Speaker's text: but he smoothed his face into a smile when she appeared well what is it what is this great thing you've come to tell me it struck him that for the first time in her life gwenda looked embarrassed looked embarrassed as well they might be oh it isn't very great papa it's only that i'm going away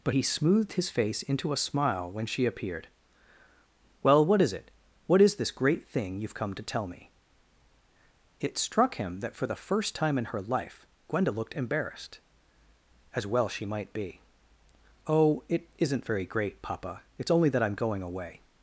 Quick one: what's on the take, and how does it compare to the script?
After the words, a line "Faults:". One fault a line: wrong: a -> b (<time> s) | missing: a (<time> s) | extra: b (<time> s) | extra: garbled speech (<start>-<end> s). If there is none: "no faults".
but he smoothed his face into a smile when she appeared well what is it what is this great thing you've come to tell me it struck him that for the first time in her life gwenda looked embarrassed as well she might be oh it isn't very great papa it's only that i'm going away
Faults:
missing: looked embarrassed (12.2 s)
wrong: they -> she (13.5 s)